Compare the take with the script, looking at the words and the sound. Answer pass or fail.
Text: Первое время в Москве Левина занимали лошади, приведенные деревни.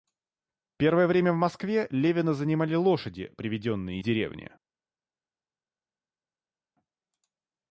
pass